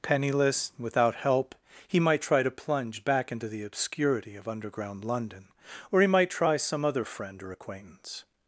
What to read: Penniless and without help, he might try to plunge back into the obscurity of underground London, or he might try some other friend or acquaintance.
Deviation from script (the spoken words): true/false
true